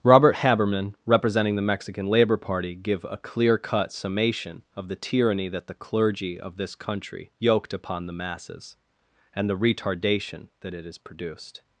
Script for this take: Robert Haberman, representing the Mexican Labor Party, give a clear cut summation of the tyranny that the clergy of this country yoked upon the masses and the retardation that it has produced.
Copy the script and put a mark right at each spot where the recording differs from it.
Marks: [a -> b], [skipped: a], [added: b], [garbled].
Robert Haberman, representing the Mexican Labor Party, give a clear cut summation of the tyranny that the clergy of this country yoked upon the masses and the retardation that it has produced.